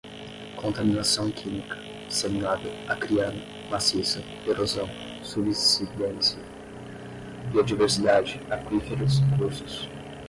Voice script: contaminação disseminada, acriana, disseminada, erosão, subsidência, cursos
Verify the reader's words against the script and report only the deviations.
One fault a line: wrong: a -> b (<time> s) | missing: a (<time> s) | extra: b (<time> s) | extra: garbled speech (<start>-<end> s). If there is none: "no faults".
extra: química (1.3 s)
wrong: disseminada -> maciça (3.7 s)
extra: biodiversidade aquíferos (7.5 s)